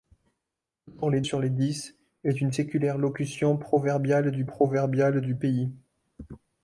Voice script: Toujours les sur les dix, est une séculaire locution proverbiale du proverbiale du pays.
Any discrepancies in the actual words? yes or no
no